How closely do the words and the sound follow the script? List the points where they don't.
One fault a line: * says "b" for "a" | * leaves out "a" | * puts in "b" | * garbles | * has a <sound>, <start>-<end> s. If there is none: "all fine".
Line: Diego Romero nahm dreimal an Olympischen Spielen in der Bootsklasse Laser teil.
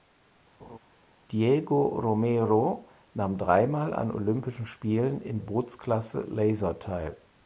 * has a laugh, 0.6-0.8 s
* leaves out "der"